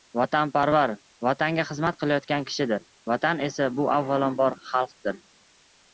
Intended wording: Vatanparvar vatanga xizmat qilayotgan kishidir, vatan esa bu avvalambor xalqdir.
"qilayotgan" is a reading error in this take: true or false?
false